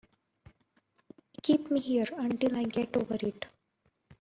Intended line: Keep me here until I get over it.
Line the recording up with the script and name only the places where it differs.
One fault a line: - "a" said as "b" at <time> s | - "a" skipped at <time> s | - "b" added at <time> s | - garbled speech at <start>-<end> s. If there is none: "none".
none